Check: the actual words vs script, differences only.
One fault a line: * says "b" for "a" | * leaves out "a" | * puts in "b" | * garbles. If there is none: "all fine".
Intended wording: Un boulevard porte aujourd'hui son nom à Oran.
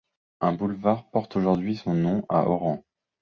all fine